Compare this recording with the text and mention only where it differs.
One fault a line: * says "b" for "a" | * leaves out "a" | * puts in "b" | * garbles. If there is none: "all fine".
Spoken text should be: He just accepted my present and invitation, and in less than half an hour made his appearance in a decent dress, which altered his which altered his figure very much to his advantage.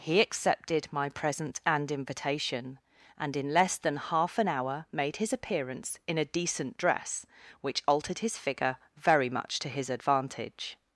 * leaves out "just"
* leaves out "which altered his"